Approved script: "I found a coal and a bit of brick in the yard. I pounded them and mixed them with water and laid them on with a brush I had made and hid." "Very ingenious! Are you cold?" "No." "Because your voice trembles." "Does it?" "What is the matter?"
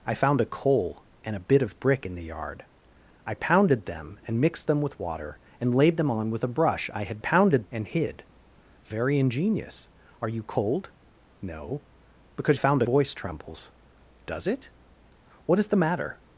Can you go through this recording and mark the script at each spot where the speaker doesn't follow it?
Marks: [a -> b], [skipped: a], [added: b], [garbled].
"I found a coal and a bit of brick in the yard. I pounded them and mixed them with water and laid them on with a brush I had [made -> pounded] and hid." "Very ingenious! Are you cold?" "No." "Because [your -> found] voice trembles." "Does it?" "What is the matter?"